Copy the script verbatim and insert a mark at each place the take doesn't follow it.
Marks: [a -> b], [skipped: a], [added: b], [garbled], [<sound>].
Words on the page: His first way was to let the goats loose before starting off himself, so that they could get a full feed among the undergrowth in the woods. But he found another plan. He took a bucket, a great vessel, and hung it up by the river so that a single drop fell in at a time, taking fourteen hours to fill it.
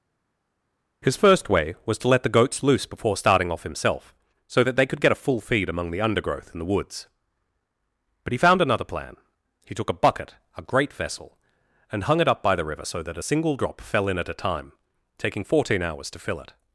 His first way was to let the goats loose before starting off himself, so that they could get a full feed among the undergrowth in the woods. But he found another plan. He took a bucket, a great vessel, and hung it up by the river so that a single drop fell in at a time, taking fourteen hours to fill it.